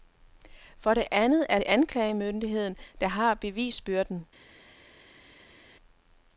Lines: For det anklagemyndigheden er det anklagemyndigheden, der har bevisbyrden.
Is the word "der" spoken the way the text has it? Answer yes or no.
yes